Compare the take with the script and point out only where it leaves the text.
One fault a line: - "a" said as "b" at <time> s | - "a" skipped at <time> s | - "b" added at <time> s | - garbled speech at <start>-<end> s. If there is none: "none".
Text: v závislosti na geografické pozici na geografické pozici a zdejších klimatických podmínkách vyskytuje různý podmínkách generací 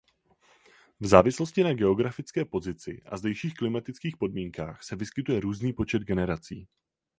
- "na geografické pozici" skipped at 3.0 s
- "se" added at 4.8 s
- "podmínkách" said as "počet" at 5.7 s